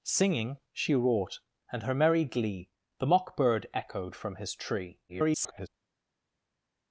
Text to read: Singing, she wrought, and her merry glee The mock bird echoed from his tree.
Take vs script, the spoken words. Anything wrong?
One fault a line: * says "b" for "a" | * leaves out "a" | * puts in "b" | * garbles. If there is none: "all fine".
* garbles